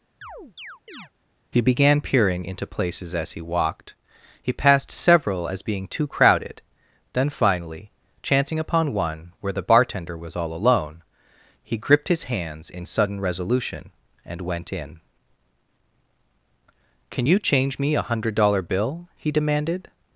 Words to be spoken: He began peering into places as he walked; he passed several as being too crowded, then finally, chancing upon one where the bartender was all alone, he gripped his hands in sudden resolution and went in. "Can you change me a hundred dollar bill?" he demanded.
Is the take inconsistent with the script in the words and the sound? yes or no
yes